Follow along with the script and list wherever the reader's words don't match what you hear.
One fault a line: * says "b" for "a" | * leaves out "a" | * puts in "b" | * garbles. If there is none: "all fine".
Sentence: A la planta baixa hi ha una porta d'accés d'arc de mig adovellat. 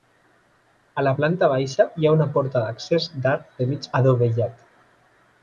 all fine